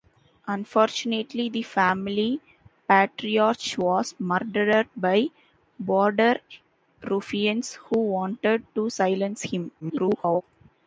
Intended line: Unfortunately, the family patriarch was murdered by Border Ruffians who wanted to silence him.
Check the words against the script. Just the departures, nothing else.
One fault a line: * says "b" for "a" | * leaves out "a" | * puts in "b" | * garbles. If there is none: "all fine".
* garbles